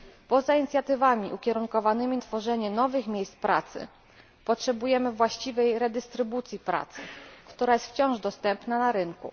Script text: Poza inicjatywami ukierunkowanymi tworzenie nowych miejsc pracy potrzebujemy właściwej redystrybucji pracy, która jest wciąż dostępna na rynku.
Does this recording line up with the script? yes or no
yes